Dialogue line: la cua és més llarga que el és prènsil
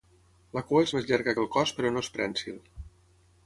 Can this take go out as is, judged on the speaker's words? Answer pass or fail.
fail